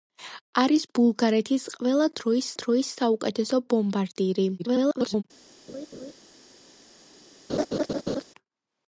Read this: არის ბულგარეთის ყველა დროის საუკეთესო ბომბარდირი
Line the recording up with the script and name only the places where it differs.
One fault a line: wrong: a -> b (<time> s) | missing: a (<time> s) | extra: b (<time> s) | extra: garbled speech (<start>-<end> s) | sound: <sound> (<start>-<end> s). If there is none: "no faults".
extra: დროის (2.6 s)
extra: garbled speech (4.6-5.2 s)
sound: laugh (5.7-6.1 s)
sound: laugh (7.5-8.2 s)